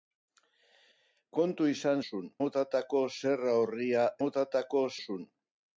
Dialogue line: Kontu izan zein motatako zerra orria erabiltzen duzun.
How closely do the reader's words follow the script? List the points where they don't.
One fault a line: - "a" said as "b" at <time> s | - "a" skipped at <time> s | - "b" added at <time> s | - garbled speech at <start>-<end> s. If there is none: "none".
- "zein" said as "duzun" at 2.0 s
- "erabiltzen" said as "motatako" at 4.2 s